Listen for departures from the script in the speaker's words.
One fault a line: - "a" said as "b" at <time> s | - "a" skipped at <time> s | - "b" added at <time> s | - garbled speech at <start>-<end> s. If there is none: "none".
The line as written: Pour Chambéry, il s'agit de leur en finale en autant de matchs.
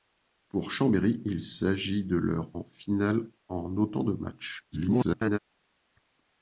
- garbled speech at 4.7-5.4 s